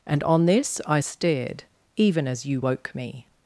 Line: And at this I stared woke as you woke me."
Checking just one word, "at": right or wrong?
wrong